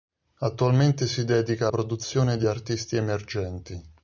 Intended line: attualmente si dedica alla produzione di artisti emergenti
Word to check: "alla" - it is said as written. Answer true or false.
false